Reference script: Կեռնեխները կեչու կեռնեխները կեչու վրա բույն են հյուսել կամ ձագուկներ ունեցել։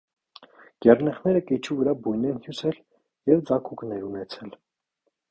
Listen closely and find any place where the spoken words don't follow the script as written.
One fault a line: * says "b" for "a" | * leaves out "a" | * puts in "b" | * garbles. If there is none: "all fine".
* leaves out "կեռնեխները կեչու"
* says "և" for "կամ"